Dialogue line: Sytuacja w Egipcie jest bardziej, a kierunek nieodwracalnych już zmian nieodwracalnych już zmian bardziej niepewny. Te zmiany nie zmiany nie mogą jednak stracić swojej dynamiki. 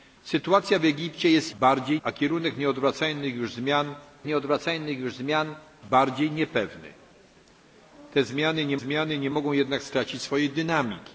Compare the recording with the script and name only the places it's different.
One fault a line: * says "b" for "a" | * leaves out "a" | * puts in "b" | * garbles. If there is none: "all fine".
all fine